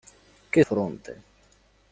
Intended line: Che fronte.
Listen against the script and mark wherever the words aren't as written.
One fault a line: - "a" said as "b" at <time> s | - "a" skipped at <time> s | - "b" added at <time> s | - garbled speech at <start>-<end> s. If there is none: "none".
none